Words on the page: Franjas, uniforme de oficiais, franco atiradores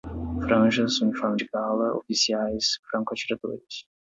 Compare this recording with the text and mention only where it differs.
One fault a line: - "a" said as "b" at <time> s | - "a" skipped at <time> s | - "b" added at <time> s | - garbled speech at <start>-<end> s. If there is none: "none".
- "gala" added at 1.5 s